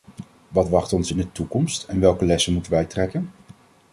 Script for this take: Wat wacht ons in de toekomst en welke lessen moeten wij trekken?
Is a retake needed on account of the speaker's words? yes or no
no